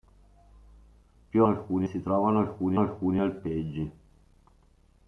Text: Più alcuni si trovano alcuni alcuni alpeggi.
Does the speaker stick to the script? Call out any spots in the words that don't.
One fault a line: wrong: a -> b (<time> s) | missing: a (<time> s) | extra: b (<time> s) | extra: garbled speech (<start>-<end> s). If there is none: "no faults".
no faults